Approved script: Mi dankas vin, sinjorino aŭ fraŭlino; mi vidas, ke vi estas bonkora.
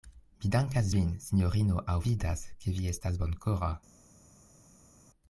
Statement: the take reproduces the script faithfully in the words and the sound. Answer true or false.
false